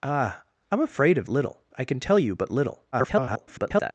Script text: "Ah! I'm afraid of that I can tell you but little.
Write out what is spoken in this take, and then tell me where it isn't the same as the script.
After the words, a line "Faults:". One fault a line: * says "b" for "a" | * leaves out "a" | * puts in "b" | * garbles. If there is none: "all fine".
"Ah! I'm afraid of little I can tell you but little. [garbled]
Faults:
* says "little" for "that"
* garbles